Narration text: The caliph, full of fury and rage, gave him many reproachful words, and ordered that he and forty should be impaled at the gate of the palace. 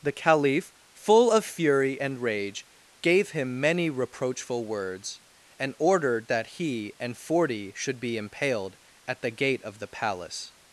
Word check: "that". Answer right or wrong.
right